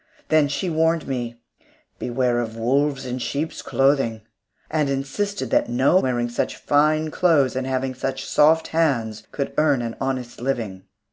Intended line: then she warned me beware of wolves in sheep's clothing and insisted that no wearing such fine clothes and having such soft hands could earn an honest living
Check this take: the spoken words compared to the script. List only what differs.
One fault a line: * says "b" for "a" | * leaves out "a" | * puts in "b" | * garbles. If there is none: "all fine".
all fine